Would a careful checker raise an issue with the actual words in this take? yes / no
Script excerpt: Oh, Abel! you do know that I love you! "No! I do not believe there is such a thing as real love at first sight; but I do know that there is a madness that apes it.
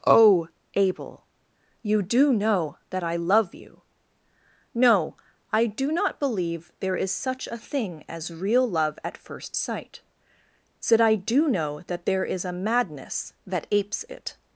yes